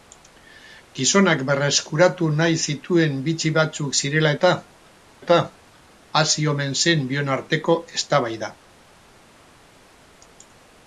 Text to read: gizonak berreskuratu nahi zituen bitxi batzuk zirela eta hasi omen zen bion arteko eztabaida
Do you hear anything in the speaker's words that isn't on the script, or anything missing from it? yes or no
yes